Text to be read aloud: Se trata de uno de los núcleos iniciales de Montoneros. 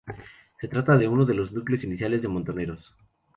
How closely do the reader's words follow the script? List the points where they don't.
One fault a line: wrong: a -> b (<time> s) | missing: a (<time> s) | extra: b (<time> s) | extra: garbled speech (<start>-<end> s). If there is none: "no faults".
no faults